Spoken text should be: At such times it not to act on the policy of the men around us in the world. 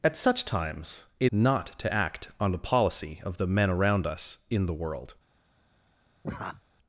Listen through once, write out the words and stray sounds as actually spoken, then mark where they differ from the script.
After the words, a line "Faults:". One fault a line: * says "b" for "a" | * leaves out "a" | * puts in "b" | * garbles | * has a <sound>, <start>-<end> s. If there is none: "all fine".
At such times it not to act on the policy of the men around us in the world.
Faults:
* has a laugh, 6.2-6.6 s